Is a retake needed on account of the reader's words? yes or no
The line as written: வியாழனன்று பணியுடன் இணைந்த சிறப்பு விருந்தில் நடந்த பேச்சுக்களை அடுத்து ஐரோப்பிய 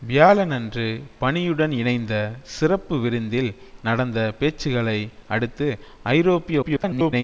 yes